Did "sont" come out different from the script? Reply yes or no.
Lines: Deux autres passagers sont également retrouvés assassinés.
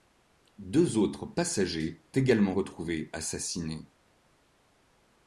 yes